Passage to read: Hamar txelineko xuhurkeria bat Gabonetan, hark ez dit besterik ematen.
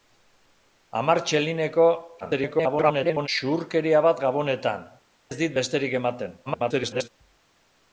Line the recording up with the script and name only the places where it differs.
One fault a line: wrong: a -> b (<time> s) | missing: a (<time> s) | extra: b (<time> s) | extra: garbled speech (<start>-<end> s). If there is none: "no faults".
extra: garbled speech (2.2-3.3 s)
missing: hark (4.9 s)
extra: garbled speech (6.5-7.1 s)